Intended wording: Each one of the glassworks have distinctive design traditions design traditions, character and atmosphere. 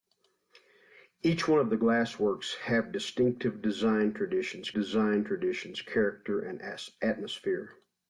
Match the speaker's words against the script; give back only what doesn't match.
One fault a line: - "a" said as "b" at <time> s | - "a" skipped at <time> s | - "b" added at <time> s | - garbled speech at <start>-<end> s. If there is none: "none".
none